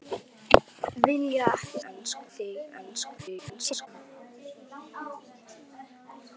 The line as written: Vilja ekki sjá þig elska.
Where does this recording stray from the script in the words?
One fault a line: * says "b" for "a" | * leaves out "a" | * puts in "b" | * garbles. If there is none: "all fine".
* says "elska" for "sjá"
* garbles